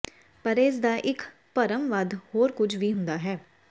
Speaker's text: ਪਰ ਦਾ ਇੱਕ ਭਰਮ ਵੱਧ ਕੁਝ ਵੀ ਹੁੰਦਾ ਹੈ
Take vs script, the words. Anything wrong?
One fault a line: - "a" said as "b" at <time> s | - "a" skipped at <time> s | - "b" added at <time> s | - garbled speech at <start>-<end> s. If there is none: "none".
- "ਇਸ" added at 0.6 s
- "ਹੋਰ" added at 2.4 s